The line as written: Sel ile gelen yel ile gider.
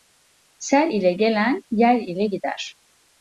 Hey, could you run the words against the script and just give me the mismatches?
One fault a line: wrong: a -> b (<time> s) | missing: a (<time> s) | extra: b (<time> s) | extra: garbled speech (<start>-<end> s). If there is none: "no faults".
no faults